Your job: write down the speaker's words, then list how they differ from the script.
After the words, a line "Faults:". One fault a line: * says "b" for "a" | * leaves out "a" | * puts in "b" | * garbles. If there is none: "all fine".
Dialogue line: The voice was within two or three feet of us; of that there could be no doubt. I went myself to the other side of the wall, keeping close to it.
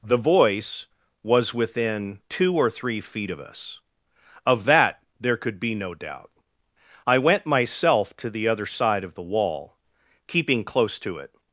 The voice was within two or three feet of us; of that there could be no doubt. I went myself to the other side of the wall, keeping close to it.
Faults:
all fine